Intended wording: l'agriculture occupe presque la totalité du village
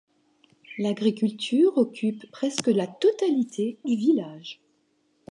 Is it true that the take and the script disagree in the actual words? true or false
false